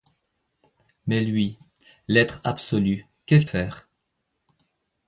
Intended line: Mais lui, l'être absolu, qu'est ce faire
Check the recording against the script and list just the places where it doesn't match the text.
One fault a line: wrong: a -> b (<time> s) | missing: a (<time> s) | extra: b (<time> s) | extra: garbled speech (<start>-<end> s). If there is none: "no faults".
no faults